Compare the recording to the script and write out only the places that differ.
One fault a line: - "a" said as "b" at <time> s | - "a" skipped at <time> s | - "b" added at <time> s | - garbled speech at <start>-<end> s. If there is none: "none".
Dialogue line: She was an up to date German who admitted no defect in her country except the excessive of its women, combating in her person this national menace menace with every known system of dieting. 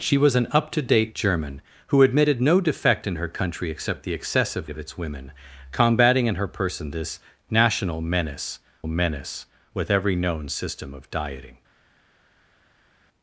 none